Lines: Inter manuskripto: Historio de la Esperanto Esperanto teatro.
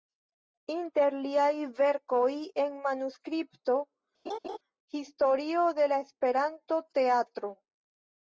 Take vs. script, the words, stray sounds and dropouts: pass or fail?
fail